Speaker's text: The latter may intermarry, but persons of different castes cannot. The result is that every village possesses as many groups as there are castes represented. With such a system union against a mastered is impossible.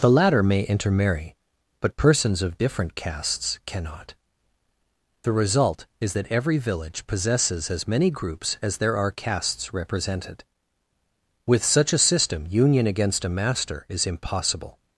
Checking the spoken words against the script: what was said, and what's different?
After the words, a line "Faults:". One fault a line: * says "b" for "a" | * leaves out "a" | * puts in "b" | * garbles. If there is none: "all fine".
The latter may intermarry, but persons of different castes cannot. The result is that every village possesses as many groups as there are castes represented. With such a system union against a master is impossible.
Faults:
* says "master" for "mastered"